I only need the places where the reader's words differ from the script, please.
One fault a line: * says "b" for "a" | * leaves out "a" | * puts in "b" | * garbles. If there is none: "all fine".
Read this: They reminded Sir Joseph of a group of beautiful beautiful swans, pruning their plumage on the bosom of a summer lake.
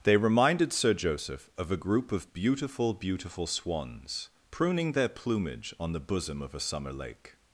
all fine